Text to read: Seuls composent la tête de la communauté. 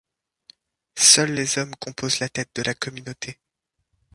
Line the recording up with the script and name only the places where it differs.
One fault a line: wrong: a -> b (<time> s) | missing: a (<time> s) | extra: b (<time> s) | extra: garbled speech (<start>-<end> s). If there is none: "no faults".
extra: les hommes (1.3 s)